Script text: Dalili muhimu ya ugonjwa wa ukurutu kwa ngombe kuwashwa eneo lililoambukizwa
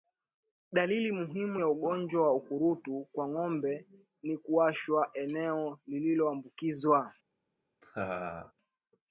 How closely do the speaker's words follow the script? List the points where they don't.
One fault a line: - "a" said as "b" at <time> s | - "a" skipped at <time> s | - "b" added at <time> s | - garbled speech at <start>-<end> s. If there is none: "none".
- "ni" added at 4.2 s